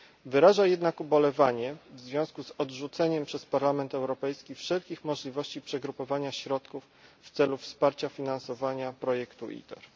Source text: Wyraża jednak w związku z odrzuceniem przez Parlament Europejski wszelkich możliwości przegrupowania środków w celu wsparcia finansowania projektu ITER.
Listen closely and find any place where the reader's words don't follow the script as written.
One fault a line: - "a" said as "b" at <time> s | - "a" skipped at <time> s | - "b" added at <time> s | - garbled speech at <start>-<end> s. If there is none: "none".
- "ubolewanie" added at 1.0 s